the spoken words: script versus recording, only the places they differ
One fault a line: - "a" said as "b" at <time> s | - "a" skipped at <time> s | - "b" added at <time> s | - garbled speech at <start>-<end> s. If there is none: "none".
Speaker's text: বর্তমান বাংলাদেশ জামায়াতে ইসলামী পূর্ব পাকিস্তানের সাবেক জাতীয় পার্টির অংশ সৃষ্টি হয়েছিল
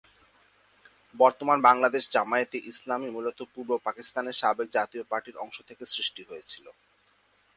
- "মূলত" added at 3.1 s
- "থেকে" added at 5.7 s